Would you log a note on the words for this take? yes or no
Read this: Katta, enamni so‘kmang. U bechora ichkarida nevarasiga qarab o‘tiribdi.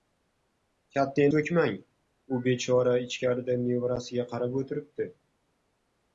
yes